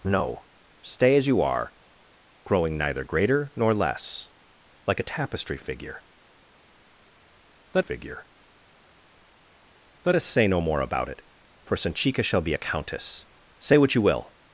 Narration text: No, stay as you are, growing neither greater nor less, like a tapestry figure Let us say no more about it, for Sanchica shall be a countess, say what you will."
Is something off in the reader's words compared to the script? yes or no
yes